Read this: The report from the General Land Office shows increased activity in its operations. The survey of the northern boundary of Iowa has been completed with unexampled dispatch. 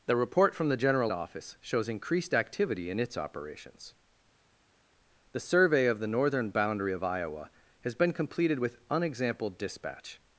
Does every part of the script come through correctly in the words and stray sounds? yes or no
no